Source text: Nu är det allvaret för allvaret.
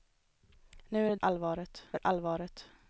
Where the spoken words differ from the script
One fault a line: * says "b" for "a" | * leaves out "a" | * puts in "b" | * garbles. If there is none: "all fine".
all fine